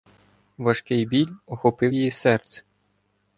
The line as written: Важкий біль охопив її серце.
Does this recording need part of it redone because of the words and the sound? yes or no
no